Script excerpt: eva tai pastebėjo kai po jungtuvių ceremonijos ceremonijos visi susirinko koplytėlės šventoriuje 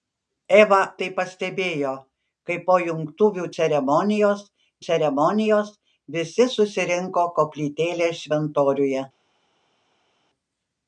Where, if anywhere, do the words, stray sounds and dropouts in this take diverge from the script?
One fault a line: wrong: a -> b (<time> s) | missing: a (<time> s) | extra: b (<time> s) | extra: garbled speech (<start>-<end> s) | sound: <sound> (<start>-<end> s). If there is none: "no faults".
no faults